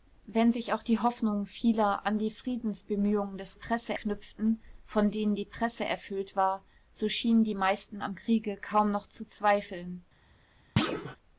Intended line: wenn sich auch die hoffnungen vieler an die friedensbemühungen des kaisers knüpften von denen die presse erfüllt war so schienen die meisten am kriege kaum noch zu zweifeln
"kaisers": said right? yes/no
no